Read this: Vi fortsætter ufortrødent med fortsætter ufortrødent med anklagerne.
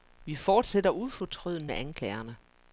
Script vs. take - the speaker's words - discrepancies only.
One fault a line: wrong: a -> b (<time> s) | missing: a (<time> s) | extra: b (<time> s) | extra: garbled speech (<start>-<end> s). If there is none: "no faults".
missing: fortsætter ufortrødent med (1.7 s)